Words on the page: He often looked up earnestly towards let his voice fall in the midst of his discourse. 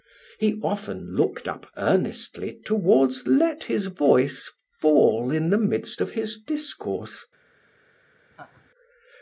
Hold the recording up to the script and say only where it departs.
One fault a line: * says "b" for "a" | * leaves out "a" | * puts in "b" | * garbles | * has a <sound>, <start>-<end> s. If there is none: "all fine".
* has a laugh, 8.3-8.7 s